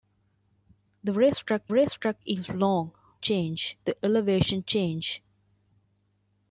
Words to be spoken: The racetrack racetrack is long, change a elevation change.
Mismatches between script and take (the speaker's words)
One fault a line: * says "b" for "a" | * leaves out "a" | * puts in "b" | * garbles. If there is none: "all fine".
all fine